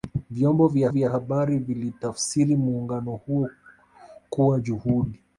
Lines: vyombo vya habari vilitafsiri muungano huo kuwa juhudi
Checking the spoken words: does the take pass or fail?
fail